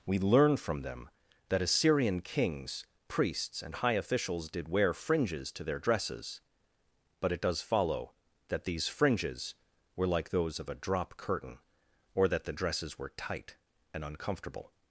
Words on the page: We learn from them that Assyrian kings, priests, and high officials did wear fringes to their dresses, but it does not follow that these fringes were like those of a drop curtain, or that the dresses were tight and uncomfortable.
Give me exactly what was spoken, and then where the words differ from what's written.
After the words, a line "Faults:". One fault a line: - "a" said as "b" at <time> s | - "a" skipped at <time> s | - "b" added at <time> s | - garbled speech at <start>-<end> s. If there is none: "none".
We learn from them that Assyrian kings, priests, and high officials did wear fringes to their dresses, but it does follow that these fringes were like those of a drop curtain, or that the dresses were tight and uncomfortable.
Faults:
- "not" skipped at 7.6 s